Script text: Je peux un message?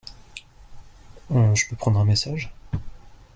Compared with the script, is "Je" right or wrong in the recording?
right